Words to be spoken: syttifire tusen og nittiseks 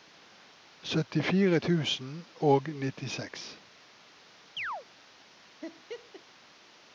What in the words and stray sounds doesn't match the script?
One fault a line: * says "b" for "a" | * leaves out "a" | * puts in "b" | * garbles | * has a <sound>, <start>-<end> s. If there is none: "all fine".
* has a chirp, 4.6-4.9 s
* has a laugh, 5.6-6.2 s